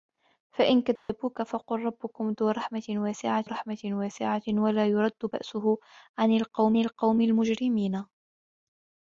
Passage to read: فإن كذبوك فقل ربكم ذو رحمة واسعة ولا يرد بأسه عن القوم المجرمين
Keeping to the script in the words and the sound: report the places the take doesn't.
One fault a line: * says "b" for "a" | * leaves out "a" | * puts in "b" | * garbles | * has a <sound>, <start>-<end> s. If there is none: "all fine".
* has a dropout, 1.0-1.1 s
* puts in "رحمة واسعة"
* puts in "القوم"